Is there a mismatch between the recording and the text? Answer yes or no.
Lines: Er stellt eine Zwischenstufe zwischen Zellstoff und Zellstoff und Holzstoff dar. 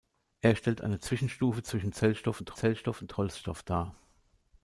no